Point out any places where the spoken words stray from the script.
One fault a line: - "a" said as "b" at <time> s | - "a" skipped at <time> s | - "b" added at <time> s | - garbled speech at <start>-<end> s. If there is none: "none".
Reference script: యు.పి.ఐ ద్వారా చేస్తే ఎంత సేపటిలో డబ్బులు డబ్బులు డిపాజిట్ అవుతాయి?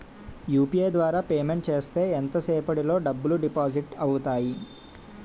- "పేమెంట్" added at 1.3 s
- "డబ్బులు" skipped at 3.4 s